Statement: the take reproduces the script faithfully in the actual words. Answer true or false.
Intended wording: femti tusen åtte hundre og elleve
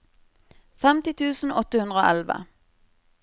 true